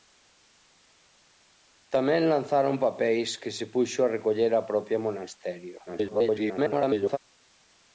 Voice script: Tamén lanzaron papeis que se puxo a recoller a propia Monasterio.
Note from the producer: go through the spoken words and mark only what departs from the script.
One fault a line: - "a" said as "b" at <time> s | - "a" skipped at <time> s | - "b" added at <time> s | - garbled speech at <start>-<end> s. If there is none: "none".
- garbled speech at 5.9-7.2 s